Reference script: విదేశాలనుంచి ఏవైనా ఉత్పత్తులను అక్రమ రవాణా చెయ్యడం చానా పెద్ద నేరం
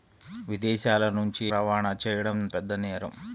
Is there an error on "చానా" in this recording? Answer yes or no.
yes